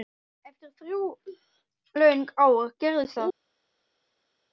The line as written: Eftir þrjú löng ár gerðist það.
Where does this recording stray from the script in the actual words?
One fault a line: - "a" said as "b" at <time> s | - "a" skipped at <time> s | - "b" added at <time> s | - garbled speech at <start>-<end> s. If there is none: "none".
none